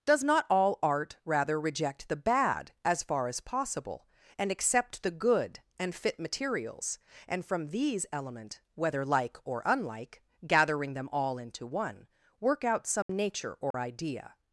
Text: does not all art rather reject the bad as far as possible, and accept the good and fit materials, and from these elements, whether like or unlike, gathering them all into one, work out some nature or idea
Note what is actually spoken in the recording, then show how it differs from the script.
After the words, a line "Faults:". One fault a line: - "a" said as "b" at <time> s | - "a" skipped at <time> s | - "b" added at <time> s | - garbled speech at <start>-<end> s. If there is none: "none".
does not all art rather reject the bad as far as possible, and accept the good and fit materials, and from these element, whether like or unlike, gathering them all into one, work out some nature or idea
Faults:
- "elements" said as "element" at 8.1 s